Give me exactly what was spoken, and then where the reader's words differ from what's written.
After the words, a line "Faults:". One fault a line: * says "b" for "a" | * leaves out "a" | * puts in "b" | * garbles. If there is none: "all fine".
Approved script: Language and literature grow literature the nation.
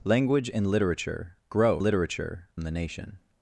Language and literature grow literature the nation.
Faults:
all fine